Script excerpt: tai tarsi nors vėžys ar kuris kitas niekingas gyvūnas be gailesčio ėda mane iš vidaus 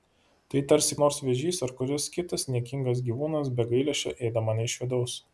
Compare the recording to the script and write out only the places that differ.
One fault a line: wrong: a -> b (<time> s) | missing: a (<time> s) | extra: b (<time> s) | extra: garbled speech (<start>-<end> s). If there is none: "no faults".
no faults